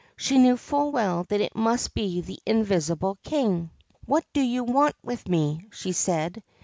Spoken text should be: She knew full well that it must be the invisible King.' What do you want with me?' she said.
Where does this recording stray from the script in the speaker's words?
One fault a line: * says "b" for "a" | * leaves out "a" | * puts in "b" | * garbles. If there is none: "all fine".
all fine